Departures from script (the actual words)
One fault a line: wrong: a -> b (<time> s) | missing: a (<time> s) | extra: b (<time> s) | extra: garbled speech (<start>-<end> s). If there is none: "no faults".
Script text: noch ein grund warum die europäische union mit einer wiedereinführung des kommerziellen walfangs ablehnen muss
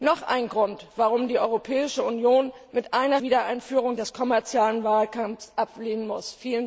no faults